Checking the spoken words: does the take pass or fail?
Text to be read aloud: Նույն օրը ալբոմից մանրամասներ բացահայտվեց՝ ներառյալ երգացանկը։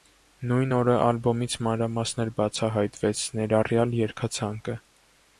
pass